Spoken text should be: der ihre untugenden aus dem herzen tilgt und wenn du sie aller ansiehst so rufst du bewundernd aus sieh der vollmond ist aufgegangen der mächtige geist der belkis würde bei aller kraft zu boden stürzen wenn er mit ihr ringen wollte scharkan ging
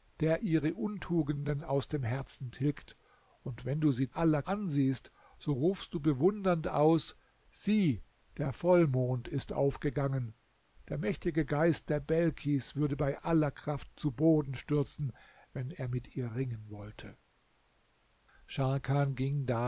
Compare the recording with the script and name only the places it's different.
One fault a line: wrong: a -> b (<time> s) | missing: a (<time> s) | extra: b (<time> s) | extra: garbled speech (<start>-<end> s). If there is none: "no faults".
no faults